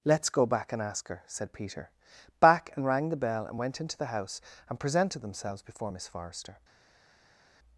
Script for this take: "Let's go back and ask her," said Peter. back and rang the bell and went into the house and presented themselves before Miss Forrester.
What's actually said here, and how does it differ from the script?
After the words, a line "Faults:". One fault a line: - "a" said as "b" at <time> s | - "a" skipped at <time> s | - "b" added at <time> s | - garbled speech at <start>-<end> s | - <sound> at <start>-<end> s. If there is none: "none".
"Let's go back and ask her," said Peter. back and rang the bell and went into the house and presented themselves before Miss Forrester.
Faults:
none